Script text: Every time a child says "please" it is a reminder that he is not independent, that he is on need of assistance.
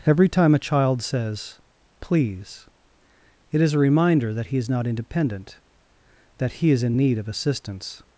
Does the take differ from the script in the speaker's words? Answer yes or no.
yes